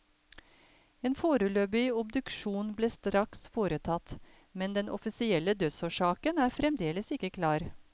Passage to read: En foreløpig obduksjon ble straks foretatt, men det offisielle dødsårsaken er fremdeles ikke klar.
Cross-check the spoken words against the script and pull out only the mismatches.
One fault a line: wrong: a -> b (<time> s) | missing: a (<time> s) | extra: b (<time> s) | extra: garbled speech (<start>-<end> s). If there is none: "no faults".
wrong: det -> den (4.8 s)